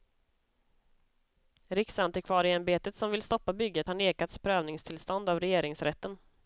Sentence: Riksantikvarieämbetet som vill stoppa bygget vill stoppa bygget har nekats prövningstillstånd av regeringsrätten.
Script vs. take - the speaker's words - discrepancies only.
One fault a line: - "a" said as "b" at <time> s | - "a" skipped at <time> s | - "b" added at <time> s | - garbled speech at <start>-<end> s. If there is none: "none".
- "vill stoppa bygget" skipped at 3.9 s